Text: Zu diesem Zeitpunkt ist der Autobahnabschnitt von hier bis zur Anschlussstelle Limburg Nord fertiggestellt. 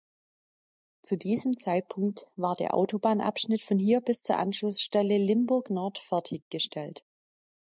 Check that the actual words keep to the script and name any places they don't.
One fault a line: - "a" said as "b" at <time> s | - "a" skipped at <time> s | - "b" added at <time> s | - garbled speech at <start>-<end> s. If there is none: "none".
- "ist" said as "war" at 2.4 s